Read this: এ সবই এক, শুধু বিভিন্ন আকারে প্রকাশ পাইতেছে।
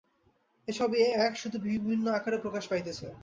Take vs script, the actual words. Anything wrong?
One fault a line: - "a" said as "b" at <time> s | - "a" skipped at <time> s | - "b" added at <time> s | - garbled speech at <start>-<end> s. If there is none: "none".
none